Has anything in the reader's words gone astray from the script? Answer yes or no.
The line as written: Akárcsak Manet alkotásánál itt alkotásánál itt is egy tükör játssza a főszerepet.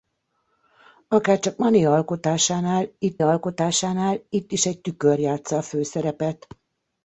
no